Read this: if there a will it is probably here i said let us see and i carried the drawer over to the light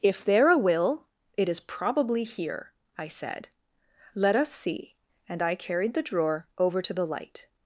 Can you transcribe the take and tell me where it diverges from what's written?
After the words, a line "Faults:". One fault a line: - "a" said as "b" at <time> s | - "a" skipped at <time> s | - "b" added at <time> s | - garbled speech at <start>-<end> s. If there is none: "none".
if there a will it is probably here i said let us see and i carried the drawer over to the light
Faults:
none